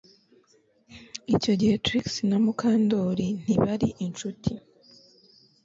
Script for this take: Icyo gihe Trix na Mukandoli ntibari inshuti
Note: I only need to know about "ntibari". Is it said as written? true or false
true